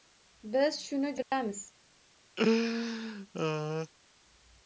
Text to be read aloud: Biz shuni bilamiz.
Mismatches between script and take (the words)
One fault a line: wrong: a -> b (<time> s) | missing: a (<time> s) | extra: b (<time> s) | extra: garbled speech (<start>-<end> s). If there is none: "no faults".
no faults